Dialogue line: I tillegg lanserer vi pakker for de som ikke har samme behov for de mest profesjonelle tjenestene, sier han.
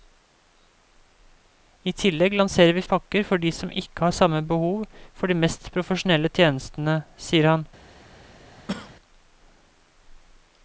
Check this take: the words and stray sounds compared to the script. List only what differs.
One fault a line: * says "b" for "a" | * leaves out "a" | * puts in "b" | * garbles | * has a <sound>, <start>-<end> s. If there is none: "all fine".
* has a cough, 8.6-9.0 s